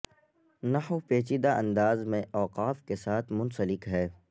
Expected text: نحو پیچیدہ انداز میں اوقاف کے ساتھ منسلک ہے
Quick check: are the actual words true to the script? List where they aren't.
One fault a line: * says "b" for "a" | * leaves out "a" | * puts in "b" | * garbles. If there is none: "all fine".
all fine